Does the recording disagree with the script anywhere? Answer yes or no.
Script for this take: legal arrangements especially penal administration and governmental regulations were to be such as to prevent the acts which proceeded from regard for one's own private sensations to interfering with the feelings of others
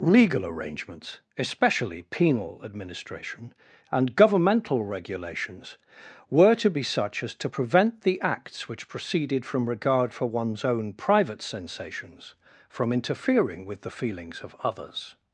yes